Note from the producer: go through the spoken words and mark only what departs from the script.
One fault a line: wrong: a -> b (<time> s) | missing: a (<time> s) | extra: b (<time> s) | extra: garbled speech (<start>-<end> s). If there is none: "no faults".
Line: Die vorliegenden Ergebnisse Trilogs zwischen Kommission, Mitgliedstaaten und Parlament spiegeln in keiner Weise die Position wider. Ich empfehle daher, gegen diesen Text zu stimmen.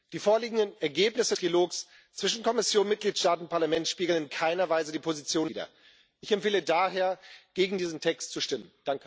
no faults